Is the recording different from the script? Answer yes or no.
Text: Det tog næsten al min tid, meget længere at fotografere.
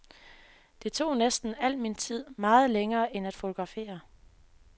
yes